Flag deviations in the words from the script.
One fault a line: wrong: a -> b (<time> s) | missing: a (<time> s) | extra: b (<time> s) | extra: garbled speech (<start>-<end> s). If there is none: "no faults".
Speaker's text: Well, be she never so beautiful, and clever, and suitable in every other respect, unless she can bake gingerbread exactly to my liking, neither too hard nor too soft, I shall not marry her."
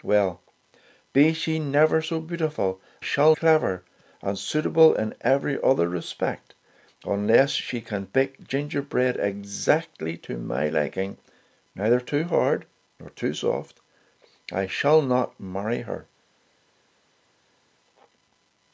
wrong: and -> shall (3.0 s)